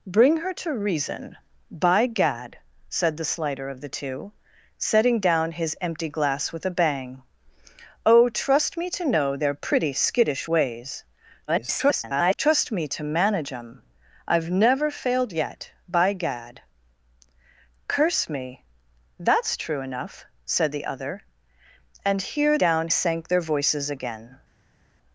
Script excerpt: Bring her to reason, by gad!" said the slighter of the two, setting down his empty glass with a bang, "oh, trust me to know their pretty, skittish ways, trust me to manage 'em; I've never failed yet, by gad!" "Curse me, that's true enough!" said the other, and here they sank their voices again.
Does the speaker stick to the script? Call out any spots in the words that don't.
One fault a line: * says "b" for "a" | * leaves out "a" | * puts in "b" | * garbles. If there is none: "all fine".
* garbles
* says "down" for "they"